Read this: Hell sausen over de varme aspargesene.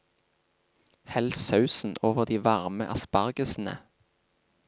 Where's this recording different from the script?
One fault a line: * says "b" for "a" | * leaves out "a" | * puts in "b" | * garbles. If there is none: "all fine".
all fine